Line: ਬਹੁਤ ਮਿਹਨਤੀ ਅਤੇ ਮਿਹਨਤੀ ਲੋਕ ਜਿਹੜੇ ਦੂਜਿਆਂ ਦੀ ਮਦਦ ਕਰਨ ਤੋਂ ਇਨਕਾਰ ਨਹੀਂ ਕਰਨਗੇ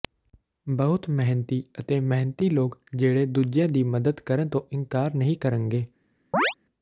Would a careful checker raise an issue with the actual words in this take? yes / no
no